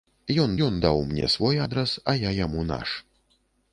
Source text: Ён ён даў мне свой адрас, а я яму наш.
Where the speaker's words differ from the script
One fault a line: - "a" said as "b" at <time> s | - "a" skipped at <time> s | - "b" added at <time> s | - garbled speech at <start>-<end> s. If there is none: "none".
none